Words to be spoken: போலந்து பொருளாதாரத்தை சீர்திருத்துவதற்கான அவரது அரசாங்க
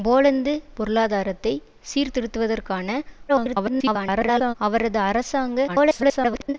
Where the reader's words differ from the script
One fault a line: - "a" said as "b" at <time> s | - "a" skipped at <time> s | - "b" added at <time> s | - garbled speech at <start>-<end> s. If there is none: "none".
- garbled speech at 3.3-4.5 s
- garbled speech at 5.7-6.5 s